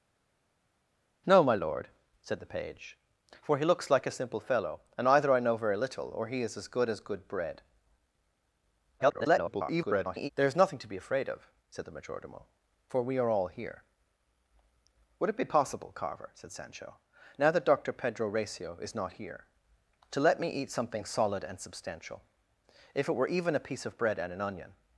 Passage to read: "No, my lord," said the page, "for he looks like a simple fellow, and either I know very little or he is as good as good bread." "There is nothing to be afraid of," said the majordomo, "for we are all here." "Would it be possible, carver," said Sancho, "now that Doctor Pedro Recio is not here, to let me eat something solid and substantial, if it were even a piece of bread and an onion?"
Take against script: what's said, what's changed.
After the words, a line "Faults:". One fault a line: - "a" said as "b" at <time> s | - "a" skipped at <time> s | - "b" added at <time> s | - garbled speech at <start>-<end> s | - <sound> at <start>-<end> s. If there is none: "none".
"No, my lord," said the page, "for he looks like a simple fellow, and either I know very little or he is as good as good bread." [garbled] "There is nothing to be afraid of," said the majordomo, "for we are all here." "Would it be possible, carver," said Sancho, "now that Doctor Pedro Recio is not here, to let me eat something solid and substantial, if it were even a piece of bread and an onion?"
Faults:
- garbled speech at 9.0-10.3 s